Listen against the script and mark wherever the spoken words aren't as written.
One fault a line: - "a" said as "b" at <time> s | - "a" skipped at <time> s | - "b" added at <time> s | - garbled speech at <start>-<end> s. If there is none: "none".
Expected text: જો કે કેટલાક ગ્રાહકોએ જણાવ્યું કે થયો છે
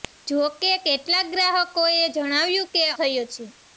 none